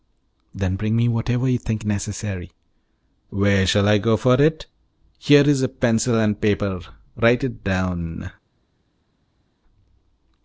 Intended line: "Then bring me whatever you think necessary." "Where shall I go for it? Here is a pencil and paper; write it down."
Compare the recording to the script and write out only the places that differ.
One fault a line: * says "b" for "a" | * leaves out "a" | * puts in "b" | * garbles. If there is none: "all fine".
all fine